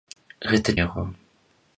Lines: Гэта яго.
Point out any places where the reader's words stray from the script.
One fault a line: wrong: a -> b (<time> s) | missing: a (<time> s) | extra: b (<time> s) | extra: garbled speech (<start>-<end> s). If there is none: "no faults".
no faults